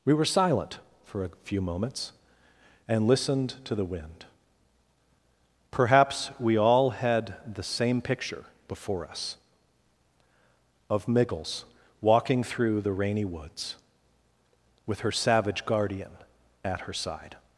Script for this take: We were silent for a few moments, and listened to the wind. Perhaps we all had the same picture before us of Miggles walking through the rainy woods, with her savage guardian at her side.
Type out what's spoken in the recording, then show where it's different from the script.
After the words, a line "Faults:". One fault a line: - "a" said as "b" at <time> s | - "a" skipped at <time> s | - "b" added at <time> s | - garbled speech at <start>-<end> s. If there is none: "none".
We were silent for a few moments, and listened to the wind. Perhaps we all had the same picture before us of Miggles walking through the rainy woods, with her savage guardian at her side.
Faults:
none